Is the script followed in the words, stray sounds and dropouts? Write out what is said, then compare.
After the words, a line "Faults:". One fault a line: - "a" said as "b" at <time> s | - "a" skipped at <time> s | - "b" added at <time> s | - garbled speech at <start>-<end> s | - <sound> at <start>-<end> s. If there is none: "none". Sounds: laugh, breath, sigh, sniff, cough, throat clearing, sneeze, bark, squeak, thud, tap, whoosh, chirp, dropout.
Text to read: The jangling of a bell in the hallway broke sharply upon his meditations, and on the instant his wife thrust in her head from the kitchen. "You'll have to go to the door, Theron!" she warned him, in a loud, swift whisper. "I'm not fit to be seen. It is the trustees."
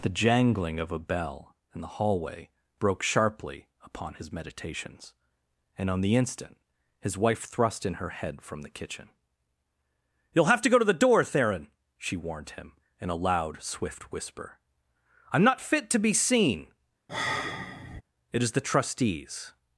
The jangling of a bell in the hallway broke sharply upon his meditations, and on the instant his wife thrust in her head from the kitchen. "You'll have to go to the door, Theron!" she warned him, in a loud, swift whisper. "I'm not fit to be seen. It is the trustees."
Faults:
- sigh at 17.1-18.0 s